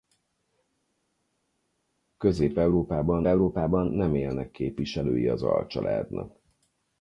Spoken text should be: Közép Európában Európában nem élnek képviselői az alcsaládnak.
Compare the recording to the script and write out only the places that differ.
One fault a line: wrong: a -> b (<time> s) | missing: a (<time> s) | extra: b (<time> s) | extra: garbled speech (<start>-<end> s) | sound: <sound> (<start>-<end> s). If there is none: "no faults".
no faults